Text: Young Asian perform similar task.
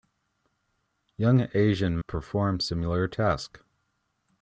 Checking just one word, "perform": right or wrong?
right